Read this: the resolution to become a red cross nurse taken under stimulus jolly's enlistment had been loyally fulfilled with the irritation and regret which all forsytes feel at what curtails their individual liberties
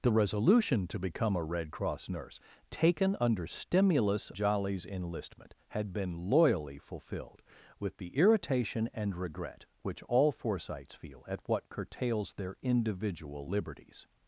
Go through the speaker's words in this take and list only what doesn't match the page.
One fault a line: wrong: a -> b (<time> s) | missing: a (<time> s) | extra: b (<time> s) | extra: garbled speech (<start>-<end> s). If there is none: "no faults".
no faults